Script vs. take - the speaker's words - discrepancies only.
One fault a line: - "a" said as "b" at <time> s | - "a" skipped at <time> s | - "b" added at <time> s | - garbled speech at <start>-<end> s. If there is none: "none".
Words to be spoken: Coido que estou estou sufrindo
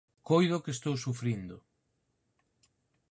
- "estou" skipped at 0.9 s